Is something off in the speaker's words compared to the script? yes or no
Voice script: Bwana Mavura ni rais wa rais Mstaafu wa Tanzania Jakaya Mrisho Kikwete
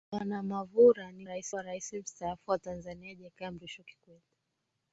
no